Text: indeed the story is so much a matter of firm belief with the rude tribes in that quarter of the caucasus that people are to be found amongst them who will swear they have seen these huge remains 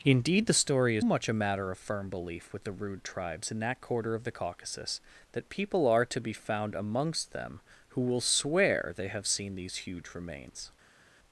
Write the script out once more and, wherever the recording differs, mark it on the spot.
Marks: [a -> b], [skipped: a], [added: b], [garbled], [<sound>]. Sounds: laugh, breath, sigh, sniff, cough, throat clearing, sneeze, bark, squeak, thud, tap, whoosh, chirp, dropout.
indeed the story is [skipped: so] much a matter of firm belief with the rude tribes in that quarter of the caucasus that people are to be found amongst them who will swear they have seen these huge remains